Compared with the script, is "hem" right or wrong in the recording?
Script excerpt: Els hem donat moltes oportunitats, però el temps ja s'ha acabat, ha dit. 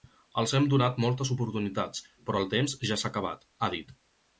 right